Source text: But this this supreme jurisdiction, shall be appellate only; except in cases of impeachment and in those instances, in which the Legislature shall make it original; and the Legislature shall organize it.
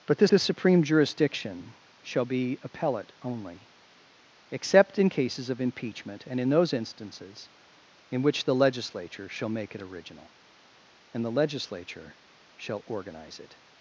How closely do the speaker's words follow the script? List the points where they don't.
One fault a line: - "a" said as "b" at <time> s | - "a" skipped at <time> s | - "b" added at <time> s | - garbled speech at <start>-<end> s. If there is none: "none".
none